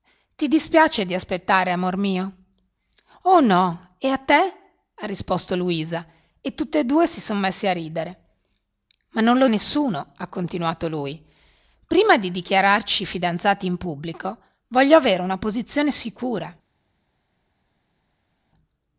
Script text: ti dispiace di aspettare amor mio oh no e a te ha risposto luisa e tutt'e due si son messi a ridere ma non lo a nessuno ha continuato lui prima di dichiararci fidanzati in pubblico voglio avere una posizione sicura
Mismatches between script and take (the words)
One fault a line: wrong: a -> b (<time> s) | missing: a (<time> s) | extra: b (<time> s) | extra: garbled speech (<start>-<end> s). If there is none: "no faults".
no faults